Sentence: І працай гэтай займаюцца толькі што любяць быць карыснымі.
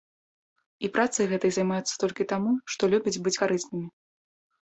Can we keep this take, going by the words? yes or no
no